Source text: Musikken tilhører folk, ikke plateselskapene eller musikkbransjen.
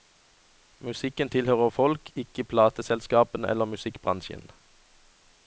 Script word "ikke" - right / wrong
right